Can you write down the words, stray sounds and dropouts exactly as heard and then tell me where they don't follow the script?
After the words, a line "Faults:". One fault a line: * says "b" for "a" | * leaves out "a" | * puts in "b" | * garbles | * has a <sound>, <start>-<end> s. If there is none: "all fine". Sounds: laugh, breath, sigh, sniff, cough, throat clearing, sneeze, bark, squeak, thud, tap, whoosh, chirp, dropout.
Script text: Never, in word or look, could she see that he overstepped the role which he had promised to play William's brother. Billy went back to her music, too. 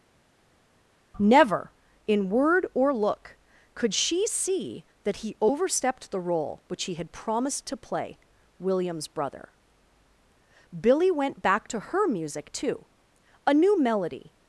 Never, in word or look, could she see that he overstepped the role which he had promised to play William's brother. Billy went back to her music, too. A new melody
Faults:
* puts in "A new melody"